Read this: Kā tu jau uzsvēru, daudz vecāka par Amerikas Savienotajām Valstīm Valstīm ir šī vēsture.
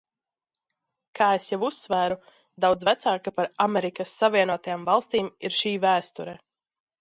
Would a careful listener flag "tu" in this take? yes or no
yes